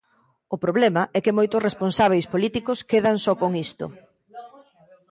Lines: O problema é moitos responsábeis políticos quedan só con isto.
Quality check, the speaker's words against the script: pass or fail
fail